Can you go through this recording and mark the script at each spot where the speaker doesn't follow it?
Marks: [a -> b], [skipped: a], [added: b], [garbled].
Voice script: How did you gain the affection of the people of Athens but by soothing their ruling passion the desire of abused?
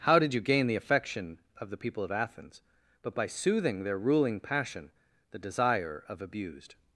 How did you gain the affection of the people of Athens but by soothing their ruling passion the desire of abused?